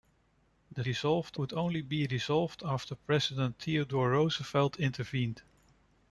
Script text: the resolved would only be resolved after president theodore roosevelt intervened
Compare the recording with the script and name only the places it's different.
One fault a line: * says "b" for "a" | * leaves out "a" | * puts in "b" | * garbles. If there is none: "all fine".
all fine